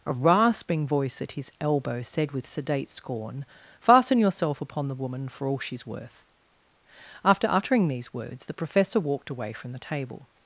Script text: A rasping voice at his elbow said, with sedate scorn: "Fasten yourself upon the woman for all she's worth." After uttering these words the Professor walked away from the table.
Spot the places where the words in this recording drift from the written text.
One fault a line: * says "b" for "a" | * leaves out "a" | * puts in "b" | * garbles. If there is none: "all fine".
all fine